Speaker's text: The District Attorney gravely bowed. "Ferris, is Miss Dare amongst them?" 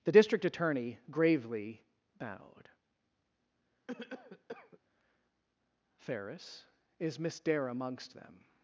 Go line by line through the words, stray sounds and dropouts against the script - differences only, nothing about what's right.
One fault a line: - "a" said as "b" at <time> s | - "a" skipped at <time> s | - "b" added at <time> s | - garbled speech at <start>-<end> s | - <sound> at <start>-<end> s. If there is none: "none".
- cough at 3.9-4.8 s